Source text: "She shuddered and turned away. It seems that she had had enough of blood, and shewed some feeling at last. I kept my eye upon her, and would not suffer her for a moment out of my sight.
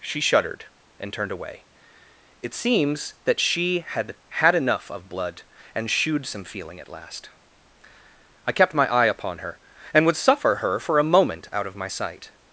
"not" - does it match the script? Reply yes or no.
no